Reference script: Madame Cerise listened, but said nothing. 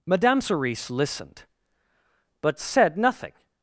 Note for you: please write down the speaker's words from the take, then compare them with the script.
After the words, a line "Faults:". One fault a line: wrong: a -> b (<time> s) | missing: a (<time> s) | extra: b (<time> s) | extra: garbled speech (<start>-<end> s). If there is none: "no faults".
Madame Cerise listened, but said nothing.
Faults:
no faults